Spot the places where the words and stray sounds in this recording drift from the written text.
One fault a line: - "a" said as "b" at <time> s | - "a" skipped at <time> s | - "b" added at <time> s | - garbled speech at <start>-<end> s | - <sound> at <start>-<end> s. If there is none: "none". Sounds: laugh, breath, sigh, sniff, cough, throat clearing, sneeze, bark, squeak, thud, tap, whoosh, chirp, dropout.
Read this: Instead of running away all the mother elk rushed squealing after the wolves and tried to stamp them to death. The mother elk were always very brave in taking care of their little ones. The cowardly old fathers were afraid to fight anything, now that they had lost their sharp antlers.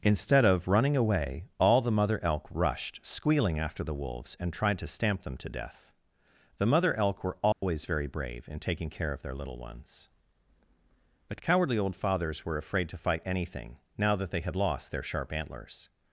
- dropout at 7.5-7.6 s
- "The" said as "But" at 11.3 s